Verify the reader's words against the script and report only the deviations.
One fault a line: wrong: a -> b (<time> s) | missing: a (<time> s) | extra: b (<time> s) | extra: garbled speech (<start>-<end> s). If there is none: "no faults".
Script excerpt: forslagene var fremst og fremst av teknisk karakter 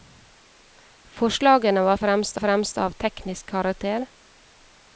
no faults